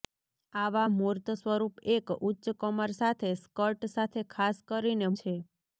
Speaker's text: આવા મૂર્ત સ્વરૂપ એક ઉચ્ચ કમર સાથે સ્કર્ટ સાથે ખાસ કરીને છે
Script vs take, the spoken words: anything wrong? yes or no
no